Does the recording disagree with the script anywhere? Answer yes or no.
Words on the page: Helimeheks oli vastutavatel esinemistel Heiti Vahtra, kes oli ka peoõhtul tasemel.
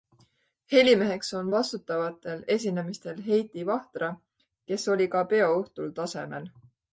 yes